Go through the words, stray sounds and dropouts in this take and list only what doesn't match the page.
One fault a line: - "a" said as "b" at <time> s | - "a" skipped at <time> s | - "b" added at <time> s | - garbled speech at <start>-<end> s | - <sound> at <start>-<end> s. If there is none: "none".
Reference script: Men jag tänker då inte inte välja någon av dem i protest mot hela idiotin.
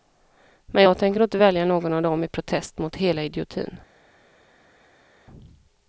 - "inte" skipped at 1.4 s